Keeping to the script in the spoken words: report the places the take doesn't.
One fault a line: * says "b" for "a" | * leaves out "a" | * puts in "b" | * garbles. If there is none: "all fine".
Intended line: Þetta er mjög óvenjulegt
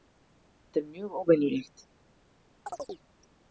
all fine